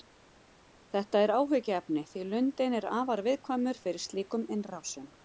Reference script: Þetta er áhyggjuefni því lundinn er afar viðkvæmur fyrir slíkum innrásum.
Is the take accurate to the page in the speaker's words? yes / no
yes